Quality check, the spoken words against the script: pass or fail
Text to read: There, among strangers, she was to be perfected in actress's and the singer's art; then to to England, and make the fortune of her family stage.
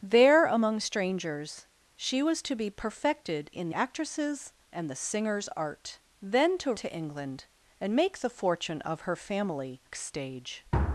pass